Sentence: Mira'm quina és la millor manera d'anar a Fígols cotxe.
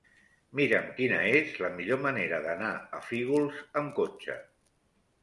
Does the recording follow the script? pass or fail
fail